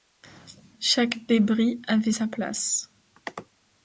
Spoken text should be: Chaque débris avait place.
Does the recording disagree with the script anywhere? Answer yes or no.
yes